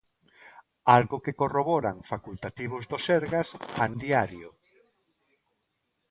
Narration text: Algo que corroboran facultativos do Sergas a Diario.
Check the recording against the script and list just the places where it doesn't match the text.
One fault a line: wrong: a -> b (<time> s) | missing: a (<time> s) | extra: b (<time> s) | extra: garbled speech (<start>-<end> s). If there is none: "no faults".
no faults